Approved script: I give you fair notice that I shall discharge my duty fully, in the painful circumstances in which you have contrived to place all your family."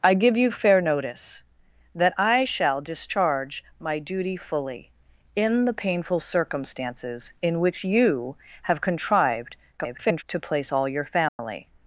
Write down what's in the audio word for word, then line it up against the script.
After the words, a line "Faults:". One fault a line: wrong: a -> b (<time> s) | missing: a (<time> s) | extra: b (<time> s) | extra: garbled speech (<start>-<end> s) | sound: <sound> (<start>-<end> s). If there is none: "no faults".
I give you fair notice that I shall discharge my duty fully, in the painful circumstances in which you have contrived [garbled] to place all your family."
Faults:
extra: garbled speech (9.8-10.2 s)
sound: dropout (11.3-11.4 s)